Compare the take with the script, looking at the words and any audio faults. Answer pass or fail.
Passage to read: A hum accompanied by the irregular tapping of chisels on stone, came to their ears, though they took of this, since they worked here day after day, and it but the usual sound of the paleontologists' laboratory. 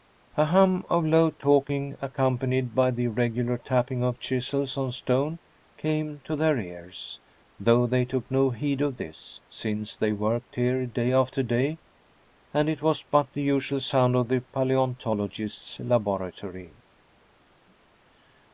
fail